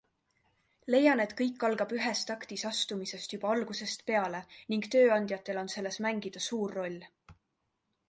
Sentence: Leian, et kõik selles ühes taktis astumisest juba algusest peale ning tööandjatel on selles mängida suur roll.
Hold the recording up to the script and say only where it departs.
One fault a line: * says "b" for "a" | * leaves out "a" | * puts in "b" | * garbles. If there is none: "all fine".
* says "algab" for "selles"